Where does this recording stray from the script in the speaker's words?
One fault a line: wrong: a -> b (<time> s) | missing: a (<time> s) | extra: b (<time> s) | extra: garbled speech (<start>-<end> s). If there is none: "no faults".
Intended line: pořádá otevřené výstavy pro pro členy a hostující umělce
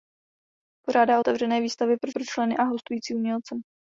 no faults